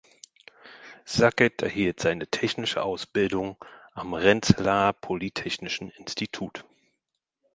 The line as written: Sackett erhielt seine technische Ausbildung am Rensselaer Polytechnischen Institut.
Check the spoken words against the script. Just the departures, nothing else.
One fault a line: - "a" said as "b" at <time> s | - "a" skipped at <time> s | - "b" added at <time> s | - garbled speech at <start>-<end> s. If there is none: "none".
none